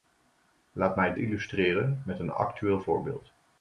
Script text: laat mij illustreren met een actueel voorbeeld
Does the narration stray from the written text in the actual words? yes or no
no